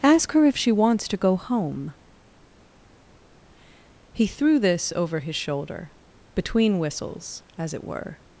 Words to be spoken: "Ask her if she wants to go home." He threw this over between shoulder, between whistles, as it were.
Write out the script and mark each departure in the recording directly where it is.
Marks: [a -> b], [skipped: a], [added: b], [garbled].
"Ask her if she wants to go home." He threw this over [between -> his] shoulder, between whistles, as it were.